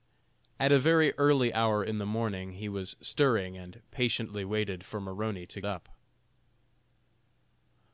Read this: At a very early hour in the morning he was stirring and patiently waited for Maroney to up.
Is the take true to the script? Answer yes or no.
yes